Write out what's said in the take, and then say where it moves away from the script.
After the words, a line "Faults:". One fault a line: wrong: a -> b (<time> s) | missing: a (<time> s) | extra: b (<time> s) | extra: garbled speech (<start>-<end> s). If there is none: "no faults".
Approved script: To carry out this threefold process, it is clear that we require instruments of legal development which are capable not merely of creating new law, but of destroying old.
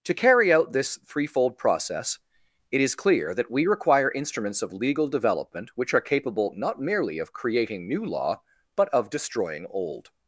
To carry out this threefold process, it is clear that we require instruments of legal development which are capable not merely of creating new law, but of destroying old.
Faults:
no faults